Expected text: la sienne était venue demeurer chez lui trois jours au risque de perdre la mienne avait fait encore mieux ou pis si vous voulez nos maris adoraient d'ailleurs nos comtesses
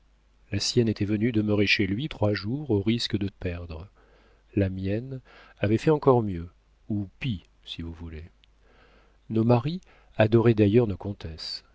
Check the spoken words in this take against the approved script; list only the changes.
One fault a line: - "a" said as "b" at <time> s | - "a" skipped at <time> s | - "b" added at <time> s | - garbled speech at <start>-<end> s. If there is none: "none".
none